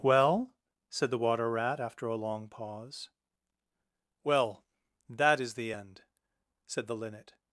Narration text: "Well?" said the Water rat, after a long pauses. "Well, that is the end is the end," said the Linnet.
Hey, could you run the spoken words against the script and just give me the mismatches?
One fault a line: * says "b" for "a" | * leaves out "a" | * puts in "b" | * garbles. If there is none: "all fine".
* says "pause" for "pauses"
* leaves out "is the end"